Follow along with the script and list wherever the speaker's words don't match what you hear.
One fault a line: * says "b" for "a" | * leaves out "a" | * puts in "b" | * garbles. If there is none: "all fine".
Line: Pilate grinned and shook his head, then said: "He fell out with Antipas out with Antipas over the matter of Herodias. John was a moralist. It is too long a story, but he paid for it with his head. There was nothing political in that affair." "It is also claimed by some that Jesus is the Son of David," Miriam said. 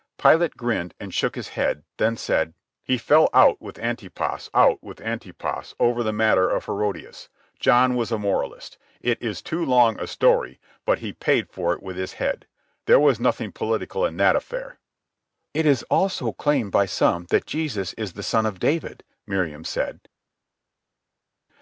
all fine